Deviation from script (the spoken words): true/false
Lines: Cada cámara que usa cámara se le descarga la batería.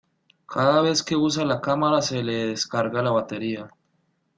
true